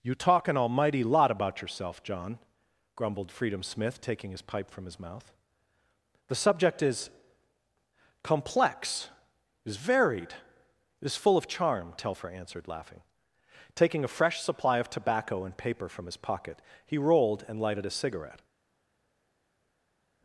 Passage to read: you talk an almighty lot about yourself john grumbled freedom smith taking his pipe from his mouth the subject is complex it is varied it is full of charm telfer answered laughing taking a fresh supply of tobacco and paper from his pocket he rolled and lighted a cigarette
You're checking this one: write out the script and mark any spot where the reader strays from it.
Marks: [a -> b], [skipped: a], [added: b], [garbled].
you talk an almighty lot about yourself john grumbled freedom smith taking his pipe from his mouth the subject is complex [skipped: it] is varied [skipped: it] is full of charm telfer answered laughing taking a fresh supply of tobacco and paper from his pocket he rolled and lighted a cigarette